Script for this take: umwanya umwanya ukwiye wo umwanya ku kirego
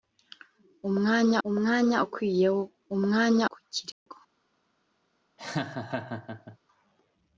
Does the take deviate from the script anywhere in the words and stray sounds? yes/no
yes